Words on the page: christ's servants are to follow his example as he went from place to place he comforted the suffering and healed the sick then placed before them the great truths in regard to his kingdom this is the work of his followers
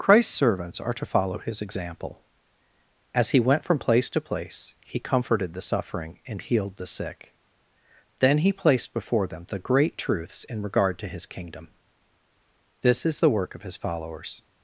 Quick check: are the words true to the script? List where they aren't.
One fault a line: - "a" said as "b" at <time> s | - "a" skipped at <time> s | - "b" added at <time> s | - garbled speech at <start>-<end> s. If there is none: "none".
- "he" added at 8.4 s